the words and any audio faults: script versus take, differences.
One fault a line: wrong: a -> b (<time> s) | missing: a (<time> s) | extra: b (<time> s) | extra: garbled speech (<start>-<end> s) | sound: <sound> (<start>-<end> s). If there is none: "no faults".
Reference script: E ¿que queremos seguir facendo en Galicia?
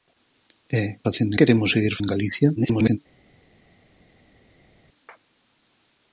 wrong: que -> facendo (1.1 s)
missing: facendo (1.9 s)
extra: garbled speech (2.6-3.0 s)